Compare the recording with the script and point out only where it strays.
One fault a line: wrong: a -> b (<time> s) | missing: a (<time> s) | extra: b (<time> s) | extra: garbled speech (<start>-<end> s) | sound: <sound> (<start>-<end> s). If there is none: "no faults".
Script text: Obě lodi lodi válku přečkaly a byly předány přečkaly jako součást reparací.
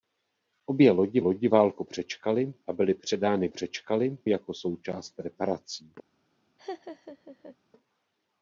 sound: laugh (6.6-7.6 s)